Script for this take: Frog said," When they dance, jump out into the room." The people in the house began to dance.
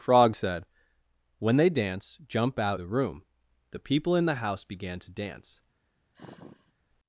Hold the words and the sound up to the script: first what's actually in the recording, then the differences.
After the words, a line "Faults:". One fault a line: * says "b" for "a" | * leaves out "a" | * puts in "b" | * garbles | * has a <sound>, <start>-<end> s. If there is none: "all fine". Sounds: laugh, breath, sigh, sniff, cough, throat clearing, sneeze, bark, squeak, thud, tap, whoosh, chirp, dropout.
Frog said," When they dance, jump out the room." The people in the house began to dance.
Faults:
* leaves out "into"
* has a sigh, 6.1-6.7 s